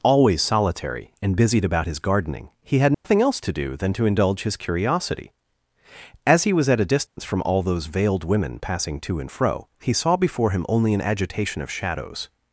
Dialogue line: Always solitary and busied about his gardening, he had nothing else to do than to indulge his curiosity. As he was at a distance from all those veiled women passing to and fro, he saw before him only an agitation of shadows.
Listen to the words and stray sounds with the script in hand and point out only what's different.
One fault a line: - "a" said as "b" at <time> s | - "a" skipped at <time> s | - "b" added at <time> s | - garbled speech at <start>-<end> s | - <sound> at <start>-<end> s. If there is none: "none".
- dropout at 2.9-3.0 s
- dropout at 7.1-7.2 s